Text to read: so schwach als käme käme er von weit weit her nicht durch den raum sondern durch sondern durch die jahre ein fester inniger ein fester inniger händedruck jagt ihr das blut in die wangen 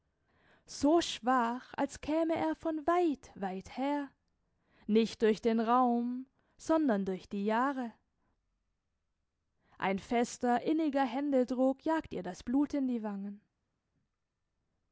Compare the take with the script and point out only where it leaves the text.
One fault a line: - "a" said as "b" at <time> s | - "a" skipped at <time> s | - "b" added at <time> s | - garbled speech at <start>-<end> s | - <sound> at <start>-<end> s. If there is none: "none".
- "käme" skipped at 2.3 s
- "sondern durch" skipped at 7.3 s
- "ein fester inniger" skipped at 11.0 s